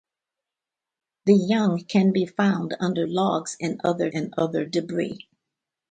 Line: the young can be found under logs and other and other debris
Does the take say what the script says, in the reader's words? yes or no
yes